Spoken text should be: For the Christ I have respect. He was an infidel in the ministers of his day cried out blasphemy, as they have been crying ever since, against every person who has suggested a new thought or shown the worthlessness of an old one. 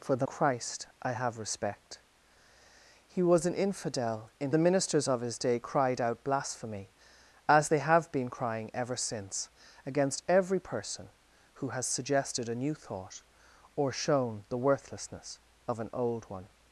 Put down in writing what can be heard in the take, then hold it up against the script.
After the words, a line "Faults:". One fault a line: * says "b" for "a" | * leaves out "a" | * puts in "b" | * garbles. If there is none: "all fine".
For the Christ I have respect. He was an infidel in the ministers of his day cried out blasphemy, as they have been crying ever since, against every person who has suggested a new thought or shown the worthlessness of an old one.
Faults:
all fine